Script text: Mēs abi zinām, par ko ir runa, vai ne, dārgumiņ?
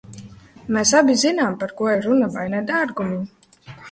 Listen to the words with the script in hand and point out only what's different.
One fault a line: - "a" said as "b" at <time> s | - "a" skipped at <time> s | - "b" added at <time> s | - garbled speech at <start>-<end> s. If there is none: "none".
none